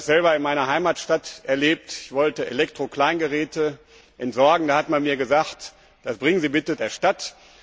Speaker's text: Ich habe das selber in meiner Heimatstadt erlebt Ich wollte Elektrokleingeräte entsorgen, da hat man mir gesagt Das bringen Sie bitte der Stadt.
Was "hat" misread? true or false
false